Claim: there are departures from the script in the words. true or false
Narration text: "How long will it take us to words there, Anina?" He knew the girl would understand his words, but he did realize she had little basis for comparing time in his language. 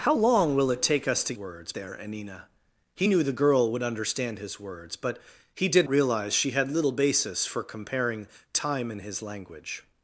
false